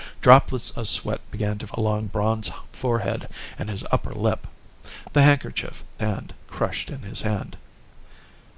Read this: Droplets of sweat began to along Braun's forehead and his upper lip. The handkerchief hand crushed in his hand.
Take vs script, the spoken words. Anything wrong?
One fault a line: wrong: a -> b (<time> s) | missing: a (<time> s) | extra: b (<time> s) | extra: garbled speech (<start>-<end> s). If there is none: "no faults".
no faults